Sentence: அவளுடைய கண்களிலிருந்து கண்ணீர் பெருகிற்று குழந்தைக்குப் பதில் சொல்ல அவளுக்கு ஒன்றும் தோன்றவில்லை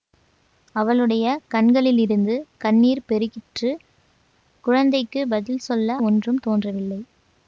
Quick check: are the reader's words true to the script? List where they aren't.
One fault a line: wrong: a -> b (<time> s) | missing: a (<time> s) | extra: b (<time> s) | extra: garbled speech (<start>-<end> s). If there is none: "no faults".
missing: அவளுக்கு (6.0 s)